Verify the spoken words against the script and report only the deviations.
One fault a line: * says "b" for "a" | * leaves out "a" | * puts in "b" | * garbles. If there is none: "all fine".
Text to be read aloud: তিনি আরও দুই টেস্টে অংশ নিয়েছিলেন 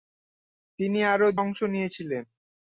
* leaves out "দুই টেস্টে"